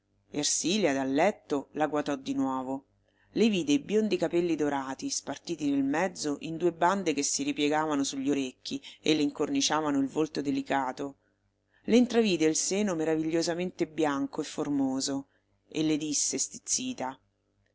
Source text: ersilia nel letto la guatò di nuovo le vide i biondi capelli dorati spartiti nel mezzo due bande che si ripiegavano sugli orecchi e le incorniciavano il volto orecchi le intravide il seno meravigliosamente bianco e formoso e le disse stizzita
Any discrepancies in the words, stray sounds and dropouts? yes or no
yes